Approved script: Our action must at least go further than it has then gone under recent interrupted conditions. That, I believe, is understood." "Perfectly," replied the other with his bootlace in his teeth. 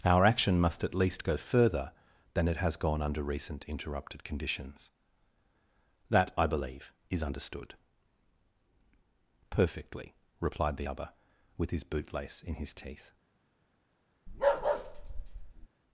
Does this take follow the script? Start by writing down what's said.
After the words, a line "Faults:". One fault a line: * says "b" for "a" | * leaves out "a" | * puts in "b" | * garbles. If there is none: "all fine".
Our action must at least go further than it has gone under recent interrupted conditions. That, I believe, is understood." "Perfectly," replied the other with his bootlace in his teeth.
Faults:
* leaves out "then"